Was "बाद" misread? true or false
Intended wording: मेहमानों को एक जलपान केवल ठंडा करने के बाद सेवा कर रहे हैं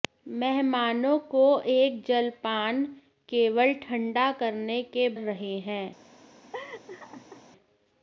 true